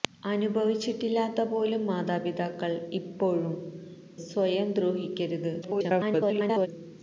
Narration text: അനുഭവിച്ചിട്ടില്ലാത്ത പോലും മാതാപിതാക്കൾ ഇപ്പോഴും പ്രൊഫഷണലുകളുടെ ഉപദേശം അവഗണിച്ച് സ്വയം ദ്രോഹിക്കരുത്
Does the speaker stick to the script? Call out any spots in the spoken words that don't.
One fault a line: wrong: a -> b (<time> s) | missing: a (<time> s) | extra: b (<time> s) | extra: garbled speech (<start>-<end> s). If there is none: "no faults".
missing: പ്രൊഫഷണലുകളുടെ ഉപദേശം അവഗണിച്ച് (3.5 s)
extra: garbled speech (5.6-6.7 s)